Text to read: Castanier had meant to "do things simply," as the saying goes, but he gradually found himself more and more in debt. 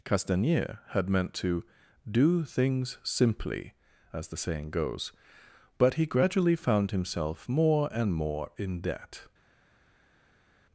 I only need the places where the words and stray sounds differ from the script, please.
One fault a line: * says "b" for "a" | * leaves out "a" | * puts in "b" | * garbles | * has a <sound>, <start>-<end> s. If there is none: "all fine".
all fine